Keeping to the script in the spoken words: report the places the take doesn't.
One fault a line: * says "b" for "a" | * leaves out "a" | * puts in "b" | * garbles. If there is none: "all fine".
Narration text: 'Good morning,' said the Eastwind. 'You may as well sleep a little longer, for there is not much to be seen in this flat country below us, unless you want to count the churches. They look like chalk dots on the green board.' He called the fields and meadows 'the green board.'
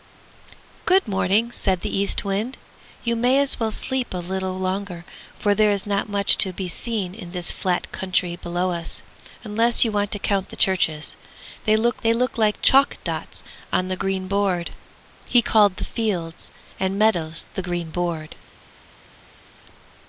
* puts in "they look"